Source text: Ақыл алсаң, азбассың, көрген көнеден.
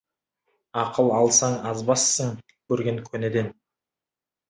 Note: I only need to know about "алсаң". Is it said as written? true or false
true